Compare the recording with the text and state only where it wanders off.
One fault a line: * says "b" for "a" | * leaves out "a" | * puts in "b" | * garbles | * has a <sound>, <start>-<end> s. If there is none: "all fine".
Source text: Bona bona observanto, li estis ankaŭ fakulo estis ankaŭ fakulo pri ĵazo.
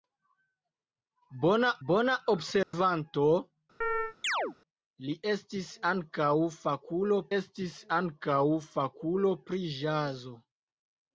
* has a dropout, 2.6-2.7 s
* has a chirp, 3.8-4.6 s